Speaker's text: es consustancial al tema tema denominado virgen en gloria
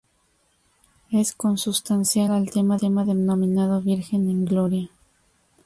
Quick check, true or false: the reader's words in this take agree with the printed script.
true